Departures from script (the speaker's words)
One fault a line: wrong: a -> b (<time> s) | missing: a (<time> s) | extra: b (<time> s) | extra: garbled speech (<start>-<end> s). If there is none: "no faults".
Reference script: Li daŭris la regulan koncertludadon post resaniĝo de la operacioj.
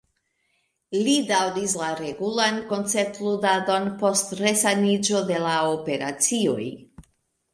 no faults